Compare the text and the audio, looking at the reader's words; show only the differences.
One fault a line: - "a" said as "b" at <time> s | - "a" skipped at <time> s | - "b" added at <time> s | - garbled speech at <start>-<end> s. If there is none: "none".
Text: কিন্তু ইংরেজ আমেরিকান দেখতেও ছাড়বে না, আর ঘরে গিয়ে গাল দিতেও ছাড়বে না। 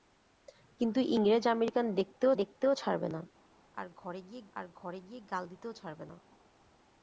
- "দেখতেও" added at 2.4 s
- "আর ঘরে গিয়ে" added at 4.5 s